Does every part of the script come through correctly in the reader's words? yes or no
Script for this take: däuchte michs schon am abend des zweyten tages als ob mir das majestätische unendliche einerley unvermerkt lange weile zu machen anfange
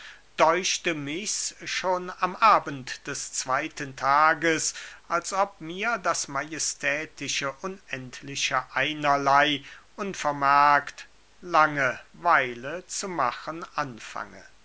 yes